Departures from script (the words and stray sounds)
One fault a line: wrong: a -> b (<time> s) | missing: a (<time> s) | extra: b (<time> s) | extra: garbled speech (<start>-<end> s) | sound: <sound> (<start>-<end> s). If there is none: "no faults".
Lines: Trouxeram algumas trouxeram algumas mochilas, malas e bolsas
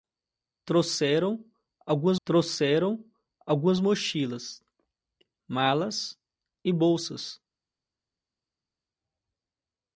no faults